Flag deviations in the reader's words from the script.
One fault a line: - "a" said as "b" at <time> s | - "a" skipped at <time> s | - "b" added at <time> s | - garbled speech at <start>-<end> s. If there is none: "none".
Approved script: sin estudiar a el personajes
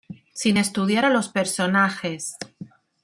- "el" said as "los" at 1.1 s